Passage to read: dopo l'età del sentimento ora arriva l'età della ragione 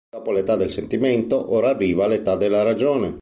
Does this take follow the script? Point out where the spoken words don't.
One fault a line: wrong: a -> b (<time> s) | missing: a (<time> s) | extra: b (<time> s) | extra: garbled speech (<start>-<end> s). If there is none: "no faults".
no faults